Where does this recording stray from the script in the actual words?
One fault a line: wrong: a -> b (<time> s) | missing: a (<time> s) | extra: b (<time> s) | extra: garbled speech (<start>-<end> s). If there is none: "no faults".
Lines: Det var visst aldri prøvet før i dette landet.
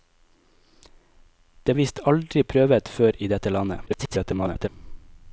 missing: var (1.8 s)
extra: garbled speech (3.9-4.7 s)